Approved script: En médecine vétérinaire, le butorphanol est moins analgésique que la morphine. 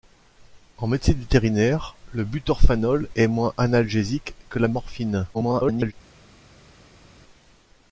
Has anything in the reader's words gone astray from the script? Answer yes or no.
yes